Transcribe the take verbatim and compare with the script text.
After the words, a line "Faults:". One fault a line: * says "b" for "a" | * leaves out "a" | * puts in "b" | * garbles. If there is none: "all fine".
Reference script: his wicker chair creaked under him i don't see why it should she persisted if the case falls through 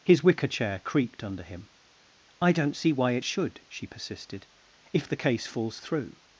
his wicker chair creaked under him i don't see why it should she persisted if the case falls through
Faults:
all fine